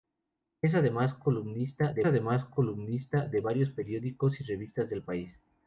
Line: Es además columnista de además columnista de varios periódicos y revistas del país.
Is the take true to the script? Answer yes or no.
yes